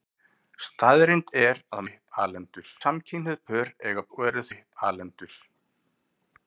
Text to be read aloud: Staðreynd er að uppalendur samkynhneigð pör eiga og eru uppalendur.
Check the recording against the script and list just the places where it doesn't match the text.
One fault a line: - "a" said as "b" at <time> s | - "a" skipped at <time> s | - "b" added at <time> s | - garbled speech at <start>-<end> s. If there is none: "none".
none